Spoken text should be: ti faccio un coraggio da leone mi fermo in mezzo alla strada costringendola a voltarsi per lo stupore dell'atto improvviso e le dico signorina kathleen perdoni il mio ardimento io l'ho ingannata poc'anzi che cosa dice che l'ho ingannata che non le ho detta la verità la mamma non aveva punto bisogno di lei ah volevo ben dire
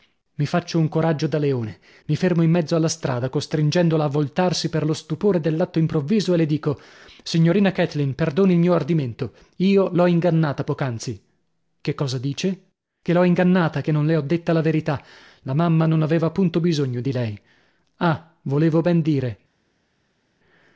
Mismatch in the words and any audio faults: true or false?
true